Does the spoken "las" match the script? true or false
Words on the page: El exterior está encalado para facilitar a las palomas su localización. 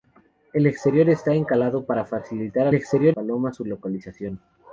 false